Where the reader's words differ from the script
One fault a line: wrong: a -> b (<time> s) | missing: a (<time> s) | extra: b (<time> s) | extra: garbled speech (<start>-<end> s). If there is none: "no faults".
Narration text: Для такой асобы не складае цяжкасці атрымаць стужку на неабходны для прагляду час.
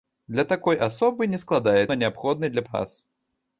missing: цяжкасці атрымаць стужку (1.8 s)
missing: прагляду (2.7 s)